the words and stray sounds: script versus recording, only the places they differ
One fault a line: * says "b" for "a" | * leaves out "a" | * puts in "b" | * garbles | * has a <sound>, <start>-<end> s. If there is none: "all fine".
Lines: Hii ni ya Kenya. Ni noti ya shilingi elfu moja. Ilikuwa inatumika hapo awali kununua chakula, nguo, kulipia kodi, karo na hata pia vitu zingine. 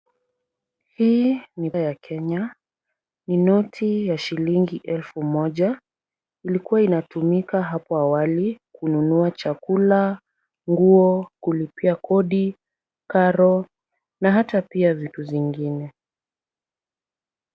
all fine